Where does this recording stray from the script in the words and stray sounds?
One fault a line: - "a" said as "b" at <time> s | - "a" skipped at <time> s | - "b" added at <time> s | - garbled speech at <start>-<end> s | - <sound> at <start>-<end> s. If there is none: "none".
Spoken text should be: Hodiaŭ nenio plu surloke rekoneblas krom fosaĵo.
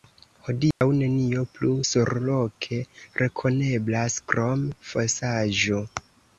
- dropout at 0.7-0.8 s